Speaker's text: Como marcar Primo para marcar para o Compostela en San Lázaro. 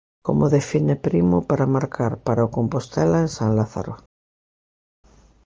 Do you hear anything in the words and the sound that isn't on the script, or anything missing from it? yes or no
yes